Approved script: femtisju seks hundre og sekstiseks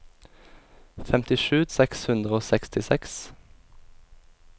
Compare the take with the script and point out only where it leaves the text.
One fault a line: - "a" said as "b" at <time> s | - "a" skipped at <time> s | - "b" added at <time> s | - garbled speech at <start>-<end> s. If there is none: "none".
none